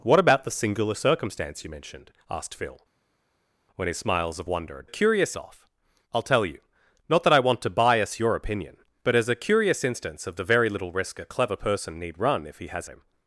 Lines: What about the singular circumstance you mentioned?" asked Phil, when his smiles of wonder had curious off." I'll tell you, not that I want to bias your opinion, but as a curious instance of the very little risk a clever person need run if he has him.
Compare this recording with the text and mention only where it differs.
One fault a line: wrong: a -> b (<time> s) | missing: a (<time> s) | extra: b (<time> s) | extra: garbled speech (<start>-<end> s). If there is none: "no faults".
no faults